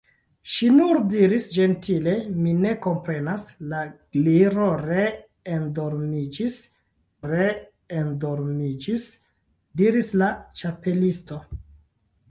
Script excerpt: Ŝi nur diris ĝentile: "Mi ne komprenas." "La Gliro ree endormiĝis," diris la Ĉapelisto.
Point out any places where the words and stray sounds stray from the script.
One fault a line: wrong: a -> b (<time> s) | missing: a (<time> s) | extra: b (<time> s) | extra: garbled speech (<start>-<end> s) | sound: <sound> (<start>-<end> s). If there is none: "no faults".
extra: ree endormiĝis (7.3 s)